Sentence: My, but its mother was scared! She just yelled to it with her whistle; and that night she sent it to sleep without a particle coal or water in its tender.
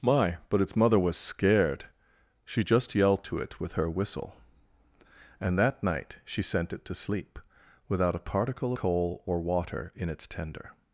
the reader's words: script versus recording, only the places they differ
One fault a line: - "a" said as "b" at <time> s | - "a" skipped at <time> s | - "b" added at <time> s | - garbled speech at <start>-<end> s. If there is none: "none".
none